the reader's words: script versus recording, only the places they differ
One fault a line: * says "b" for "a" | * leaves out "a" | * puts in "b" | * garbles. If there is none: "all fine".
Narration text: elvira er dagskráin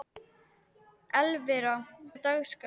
all fine